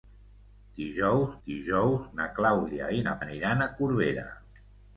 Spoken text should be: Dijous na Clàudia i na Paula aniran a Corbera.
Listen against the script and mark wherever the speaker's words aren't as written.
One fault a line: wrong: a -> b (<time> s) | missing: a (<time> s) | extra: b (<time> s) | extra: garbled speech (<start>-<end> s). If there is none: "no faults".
extra: dijous (1.5 s)
missing: Paula (3.2 s)